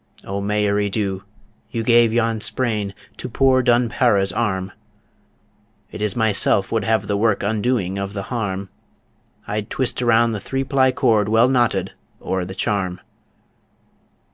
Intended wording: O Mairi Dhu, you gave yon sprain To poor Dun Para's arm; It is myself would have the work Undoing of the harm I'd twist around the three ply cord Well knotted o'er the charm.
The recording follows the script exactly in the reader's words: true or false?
true